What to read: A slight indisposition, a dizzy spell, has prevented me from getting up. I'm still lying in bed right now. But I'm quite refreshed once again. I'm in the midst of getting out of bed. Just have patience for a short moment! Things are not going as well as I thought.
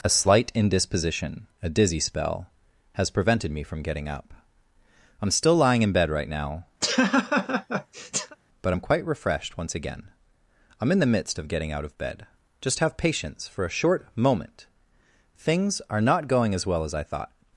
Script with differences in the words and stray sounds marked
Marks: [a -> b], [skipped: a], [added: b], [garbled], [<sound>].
A slight indisposition, a dizzy spell, has prevented me from getting up. I'm still lying in bed right now. [laugh] But I'm quite refreshed once again. I'm in the midst of getting out of bed. Just have patience for a short moment! Things are not going as well as I thought.